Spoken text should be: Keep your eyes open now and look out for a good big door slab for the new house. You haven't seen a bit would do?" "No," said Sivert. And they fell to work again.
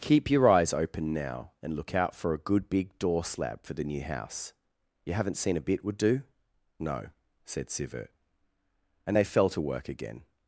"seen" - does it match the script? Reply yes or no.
yes